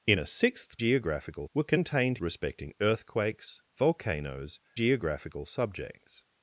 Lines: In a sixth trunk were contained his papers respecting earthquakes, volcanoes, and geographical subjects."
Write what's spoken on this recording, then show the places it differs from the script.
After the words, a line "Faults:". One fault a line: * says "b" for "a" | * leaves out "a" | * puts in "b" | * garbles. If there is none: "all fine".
In a sixth geographical were contained respecting earthquakes, volcanoes, geographical subjects."
Faults:
* says "geographical" for "trunk"
* leaves out "his papers"
* leaves out "and"